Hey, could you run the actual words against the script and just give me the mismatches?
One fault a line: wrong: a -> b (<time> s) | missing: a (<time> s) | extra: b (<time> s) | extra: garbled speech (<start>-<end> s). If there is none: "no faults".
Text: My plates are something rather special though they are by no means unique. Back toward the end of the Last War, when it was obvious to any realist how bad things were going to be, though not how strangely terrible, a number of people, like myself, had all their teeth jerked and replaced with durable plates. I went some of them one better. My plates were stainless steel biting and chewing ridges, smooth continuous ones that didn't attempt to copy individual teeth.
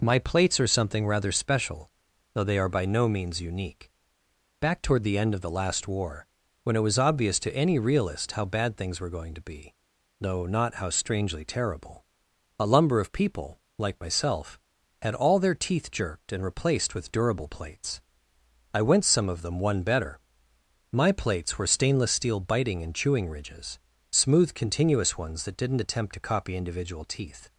wrong: number -> lumber (12.7 s)